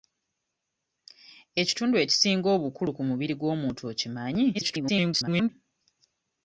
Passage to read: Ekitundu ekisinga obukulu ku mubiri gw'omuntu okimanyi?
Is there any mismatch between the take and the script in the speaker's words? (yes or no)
yes